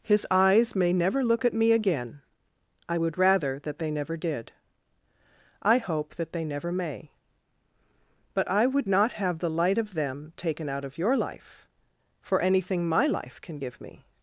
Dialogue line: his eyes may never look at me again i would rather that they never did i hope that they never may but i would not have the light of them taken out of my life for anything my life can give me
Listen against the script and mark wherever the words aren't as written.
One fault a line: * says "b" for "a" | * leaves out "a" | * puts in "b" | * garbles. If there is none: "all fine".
* says "your" for "my"